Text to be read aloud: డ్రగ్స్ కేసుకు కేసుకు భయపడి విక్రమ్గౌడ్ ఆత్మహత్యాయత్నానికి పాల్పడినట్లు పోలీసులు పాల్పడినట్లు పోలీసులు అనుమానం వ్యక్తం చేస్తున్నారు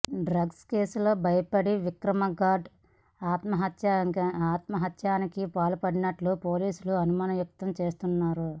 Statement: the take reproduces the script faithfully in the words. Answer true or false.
false